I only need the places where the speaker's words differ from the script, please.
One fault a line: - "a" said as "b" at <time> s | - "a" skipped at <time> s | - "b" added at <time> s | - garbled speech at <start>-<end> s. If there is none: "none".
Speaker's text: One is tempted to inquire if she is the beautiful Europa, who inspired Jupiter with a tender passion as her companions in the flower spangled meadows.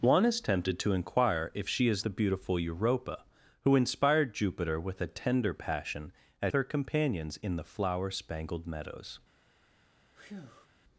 none